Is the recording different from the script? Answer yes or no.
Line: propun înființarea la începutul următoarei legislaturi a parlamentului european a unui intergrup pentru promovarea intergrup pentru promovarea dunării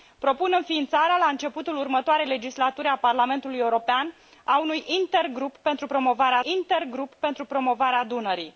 no